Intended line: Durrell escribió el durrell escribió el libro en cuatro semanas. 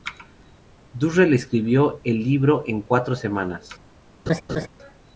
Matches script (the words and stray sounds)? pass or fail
fail